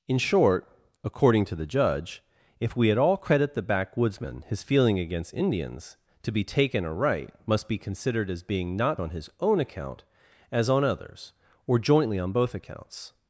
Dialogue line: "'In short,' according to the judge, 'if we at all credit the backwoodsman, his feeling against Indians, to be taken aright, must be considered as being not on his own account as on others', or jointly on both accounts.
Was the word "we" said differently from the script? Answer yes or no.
no